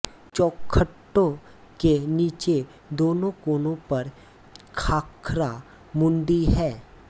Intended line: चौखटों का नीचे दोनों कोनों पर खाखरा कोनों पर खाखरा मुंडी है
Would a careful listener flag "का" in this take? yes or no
yes